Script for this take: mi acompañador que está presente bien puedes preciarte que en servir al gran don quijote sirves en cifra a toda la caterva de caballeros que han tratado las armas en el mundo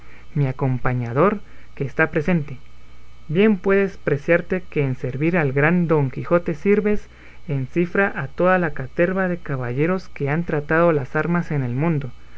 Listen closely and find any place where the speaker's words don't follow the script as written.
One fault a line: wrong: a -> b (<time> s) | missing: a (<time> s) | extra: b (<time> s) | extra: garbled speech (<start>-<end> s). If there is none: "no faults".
no faults